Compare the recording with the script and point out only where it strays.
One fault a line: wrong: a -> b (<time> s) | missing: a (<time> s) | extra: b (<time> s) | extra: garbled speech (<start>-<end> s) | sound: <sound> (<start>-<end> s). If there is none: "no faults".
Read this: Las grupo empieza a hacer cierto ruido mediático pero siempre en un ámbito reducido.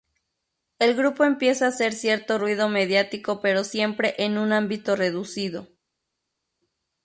wrong: Las -> El (0.8 s)